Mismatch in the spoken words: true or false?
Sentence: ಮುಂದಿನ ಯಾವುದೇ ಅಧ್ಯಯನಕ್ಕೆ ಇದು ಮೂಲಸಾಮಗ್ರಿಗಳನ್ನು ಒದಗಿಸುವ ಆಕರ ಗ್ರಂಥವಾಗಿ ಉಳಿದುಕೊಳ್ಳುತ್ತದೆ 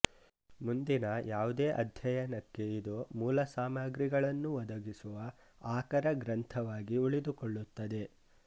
false